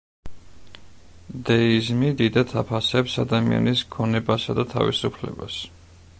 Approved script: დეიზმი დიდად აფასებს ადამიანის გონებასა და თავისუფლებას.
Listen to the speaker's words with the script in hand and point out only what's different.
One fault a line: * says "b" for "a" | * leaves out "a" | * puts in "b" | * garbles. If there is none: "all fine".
all fine